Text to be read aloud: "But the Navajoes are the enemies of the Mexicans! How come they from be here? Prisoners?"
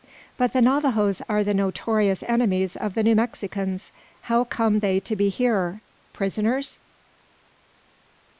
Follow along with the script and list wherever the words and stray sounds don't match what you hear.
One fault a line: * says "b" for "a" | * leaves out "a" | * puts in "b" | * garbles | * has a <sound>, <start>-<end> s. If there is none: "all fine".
* puts in "notorious"
* puts in "New"
* says "to" for "from"